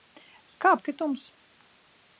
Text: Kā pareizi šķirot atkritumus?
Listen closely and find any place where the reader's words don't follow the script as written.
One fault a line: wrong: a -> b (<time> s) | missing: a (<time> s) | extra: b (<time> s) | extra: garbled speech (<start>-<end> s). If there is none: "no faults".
missing: pareizi šķirot (0.7 s)